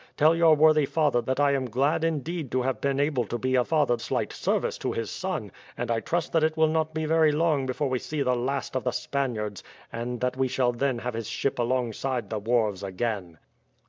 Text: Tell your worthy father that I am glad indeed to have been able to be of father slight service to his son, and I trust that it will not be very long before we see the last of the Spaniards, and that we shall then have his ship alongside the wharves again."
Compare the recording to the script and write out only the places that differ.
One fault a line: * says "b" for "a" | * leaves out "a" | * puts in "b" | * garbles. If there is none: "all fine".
all fine